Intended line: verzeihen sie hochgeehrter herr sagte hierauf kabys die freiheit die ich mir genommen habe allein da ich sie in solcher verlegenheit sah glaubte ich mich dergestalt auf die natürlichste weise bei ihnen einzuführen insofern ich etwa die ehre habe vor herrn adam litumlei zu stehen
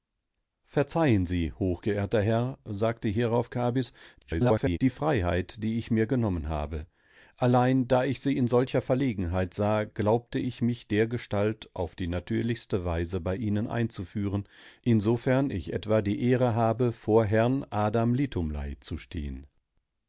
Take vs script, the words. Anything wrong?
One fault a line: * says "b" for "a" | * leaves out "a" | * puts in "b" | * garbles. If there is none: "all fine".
* garbles